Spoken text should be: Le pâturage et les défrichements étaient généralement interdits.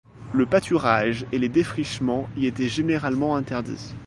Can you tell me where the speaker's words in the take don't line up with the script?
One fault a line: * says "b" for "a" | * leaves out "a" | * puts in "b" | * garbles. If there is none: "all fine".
* puts in "y"